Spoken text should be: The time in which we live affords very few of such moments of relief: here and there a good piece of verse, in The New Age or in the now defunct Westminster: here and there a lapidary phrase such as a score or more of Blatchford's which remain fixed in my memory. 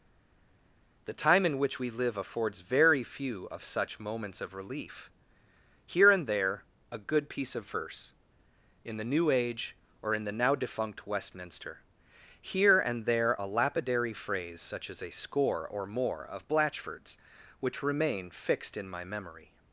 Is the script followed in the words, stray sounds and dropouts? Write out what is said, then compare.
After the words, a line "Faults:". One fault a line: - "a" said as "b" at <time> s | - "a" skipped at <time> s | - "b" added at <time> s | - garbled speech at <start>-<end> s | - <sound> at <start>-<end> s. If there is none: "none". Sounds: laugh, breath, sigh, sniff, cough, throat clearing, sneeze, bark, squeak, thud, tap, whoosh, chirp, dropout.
The time in which we live affords very few of such moments of relief: here and there a good piece of verse, in The New Age or in the now defunct Westminster: here and there a lapidary phrase such as a score or more of Blatchford's which remain fixed in my memory.
Faults:
none